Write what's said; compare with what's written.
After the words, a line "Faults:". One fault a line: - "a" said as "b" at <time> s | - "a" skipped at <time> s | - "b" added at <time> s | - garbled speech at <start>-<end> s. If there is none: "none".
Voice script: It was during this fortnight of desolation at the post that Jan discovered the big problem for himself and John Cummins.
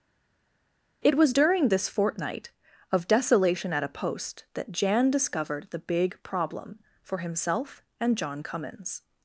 It was during this fortnight of desolation at a post that Jan discovered the big problem for himself and John Cummins.
Faults:
- "the" said as "a" at 3.8 s